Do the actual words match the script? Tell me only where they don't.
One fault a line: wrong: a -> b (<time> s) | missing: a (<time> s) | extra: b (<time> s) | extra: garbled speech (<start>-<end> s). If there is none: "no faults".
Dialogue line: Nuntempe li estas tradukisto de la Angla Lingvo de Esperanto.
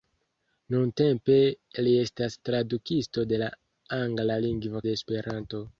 no faults